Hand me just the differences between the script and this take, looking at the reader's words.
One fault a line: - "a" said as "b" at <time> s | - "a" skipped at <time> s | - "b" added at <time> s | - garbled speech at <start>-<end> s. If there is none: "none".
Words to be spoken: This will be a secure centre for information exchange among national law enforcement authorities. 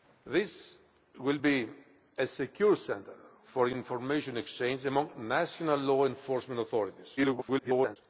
- garbled speech at 7.2-8.0 s